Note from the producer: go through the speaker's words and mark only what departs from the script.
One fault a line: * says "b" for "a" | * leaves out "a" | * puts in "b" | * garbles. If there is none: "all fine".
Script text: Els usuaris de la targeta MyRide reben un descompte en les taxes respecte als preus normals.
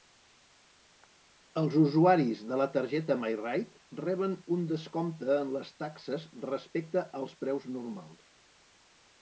all fine